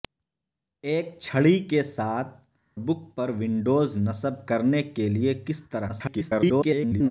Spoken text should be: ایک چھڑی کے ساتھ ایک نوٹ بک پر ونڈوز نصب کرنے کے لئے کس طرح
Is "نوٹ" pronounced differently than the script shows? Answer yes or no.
yes